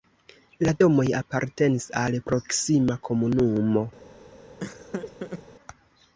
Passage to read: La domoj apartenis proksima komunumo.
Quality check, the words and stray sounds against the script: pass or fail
fail